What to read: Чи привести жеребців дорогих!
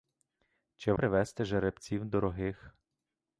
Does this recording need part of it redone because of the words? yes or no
no